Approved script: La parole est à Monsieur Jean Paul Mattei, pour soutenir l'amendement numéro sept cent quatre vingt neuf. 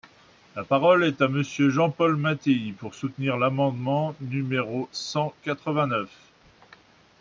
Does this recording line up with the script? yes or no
no